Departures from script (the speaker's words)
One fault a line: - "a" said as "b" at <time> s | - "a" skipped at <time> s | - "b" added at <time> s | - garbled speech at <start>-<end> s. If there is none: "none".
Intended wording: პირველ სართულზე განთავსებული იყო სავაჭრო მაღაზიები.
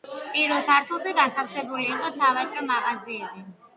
none